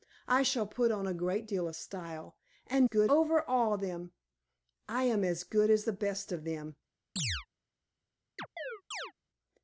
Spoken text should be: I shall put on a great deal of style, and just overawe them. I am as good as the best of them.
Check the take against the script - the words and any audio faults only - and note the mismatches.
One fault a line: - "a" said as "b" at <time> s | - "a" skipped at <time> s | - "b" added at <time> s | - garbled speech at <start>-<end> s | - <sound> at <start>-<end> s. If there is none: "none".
- "just" said as "good" at 2.8 s
- chirp at 7.2-7.5 s
- chirp at 8.4-9.1 s